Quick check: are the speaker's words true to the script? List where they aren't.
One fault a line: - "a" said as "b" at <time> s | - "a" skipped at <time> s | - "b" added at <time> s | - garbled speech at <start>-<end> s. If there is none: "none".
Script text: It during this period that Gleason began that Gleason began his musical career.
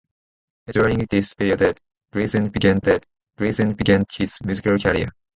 none